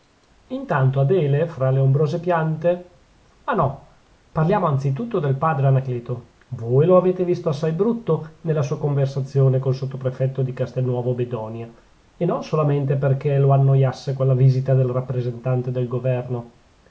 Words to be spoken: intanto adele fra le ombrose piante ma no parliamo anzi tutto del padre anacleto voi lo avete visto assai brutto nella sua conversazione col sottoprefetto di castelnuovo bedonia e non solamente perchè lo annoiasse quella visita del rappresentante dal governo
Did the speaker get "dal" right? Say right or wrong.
wrong